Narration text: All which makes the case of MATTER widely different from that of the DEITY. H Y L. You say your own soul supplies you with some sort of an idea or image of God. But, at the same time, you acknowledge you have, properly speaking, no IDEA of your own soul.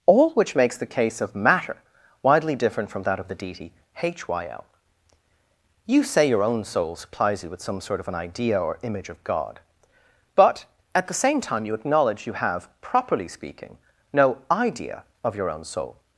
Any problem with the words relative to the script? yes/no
no